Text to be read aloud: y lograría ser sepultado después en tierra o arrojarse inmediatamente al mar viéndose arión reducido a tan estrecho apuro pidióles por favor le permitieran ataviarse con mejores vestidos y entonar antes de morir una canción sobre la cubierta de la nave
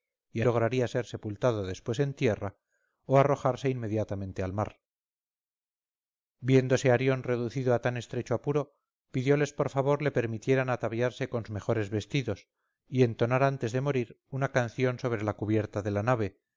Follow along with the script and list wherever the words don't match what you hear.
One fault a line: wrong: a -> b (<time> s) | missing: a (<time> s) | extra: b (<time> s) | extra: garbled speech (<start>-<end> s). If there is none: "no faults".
no faults